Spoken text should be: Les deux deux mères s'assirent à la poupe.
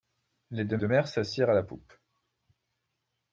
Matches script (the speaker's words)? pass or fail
pass